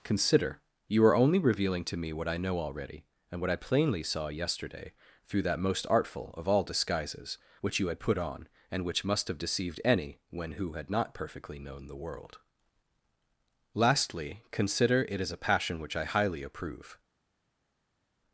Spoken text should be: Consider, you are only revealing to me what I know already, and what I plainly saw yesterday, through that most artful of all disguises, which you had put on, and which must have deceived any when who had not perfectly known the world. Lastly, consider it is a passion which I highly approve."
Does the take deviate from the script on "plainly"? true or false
false